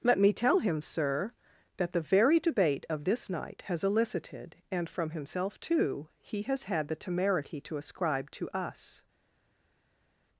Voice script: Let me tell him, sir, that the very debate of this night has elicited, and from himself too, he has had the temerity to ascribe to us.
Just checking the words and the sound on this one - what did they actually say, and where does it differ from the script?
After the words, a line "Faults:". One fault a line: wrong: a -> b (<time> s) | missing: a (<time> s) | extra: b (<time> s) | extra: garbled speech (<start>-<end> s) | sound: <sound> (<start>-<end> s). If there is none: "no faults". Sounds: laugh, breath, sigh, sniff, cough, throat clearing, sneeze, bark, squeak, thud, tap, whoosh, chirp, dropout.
Let me tell him, sir, that the very debate of this night has elicited, and from himself too, he has had the temerity to ascribe to us.
Faults:
no faults